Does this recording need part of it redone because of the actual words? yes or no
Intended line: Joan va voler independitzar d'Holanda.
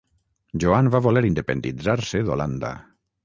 yes